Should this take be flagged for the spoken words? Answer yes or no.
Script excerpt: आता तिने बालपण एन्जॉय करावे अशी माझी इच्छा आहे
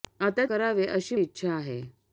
yes